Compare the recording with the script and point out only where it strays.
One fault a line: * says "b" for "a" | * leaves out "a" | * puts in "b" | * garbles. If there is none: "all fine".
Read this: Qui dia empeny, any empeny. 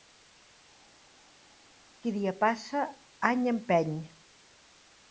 * says "passa" for "empeny"